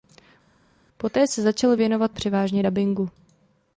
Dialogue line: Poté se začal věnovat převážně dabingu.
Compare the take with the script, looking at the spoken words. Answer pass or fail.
pass